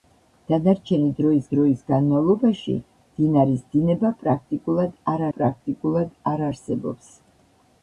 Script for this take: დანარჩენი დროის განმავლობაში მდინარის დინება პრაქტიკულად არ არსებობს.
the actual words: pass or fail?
fail